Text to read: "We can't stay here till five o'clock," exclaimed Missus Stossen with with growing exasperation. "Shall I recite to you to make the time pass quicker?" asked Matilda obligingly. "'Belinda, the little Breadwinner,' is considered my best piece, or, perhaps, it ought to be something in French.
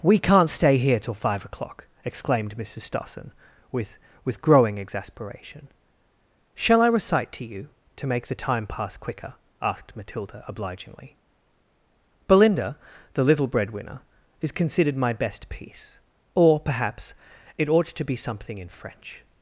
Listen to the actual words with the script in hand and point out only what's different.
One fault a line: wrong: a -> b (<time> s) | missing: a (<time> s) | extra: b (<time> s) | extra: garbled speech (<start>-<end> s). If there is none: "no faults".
no faults